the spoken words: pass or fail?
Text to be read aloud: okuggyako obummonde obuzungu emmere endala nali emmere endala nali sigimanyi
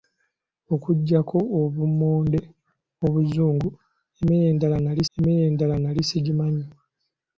pass